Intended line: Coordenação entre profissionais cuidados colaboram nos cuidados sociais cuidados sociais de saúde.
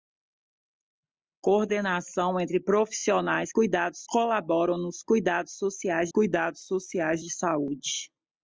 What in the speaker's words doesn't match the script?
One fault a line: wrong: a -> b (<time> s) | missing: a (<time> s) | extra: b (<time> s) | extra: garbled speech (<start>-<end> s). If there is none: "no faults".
no faults